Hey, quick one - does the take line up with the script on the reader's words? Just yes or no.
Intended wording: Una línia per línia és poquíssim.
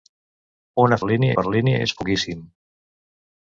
yes